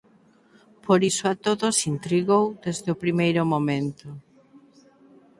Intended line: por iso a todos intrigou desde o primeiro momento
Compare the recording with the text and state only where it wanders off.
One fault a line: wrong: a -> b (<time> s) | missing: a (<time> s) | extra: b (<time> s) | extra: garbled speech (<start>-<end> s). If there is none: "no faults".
no faults